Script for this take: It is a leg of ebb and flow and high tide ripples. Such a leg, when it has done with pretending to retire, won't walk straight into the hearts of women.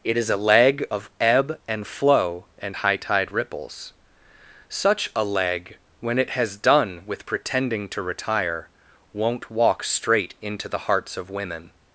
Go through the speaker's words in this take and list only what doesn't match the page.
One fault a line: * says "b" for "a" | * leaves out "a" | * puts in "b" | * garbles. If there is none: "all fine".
all fine